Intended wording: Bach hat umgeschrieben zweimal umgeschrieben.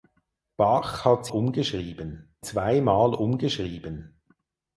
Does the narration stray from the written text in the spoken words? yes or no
no